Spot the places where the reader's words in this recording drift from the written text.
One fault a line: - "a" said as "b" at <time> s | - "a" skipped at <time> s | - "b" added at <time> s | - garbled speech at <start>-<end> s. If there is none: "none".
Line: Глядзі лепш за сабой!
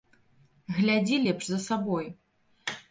none